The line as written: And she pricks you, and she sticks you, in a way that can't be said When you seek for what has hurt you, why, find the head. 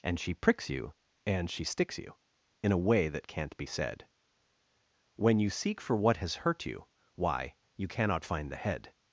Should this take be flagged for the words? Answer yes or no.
yes